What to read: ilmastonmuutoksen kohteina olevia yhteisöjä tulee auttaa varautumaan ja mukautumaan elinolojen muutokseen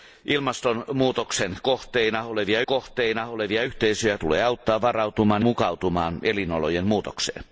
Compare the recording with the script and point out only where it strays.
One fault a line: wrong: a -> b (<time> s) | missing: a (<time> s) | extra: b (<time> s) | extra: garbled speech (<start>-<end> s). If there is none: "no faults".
extra: kohteina olevia (2.6 s)
missing: ja (5.4 s)